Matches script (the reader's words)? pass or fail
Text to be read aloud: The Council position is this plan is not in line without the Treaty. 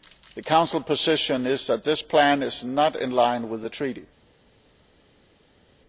fail